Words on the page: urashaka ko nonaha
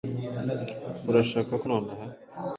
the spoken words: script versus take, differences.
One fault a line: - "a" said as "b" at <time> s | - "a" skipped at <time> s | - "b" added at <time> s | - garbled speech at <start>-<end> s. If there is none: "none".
none